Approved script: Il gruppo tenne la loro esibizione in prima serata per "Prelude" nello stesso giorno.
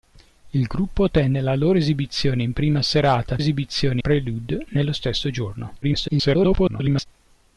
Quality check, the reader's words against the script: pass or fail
fail